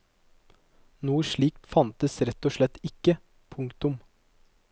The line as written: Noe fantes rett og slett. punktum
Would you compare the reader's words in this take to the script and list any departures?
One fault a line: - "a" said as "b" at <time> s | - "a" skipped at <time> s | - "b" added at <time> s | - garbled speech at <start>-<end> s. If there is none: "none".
- "slikt" added at 1.3 s
- "ikke" added at 2.9 s